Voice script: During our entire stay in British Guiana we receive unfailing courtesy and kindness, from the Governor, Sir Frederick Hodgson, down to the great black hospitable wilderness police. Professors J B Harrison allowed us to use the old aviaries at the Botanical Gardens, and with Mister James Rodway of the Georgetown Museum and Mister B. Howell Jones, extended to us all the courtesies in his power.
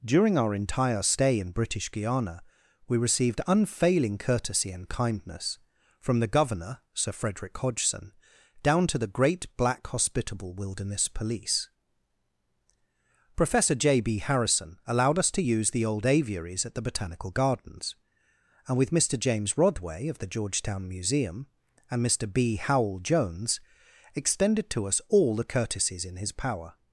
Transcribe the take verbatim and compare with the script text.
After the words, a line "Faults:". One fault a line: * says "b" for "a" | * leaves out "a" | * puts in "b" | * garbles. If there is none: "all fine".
During our entire stay in British Guiana we received unfailing courtesy and kindness, from the Governor, Sir Frederick Hodgson, down to the great black hospitable wilderness police. Professor J B Harrison allowed us to use the old aviaries at the Botanical Gardens, and with Mister James Rodway of the Georgetown Museum and Mister B. Howell Jones, extended to us all the courtesies in his power.
Faults:
* says "received" for "receive"
* says "Professor" for "Professors"